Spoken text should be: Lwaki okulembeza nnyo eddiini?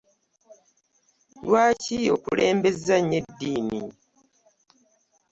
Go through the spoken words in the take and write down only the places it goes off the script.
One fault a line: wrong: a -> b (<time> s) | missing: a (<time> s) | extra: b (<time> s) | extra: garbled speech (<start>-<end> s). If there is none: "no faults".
no faults